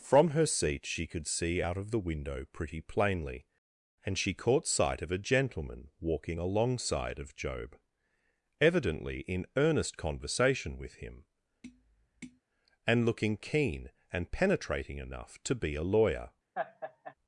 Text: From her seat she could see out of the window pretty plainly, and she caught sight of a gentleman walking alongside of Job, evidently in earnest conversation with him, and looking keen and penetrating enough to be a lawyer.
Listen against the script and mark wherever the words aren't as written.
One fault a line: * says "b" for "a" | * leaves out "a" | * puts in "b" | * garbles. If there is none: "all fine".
all fine